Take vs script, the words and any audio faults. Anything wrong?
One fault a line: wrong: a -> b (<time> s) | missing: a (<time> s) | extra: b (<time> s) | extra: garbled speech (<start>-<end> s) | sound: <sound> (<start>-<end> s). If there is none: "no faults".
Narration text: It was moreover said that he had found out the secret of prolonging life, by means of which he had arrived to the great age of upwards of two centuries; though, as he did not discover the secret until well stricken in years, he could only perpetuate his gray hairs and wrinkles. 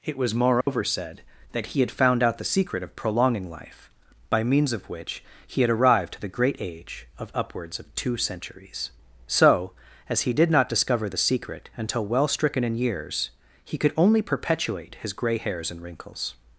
sound: dropout (0.6-0.7 s)
wrong: though -> so (9.3 s)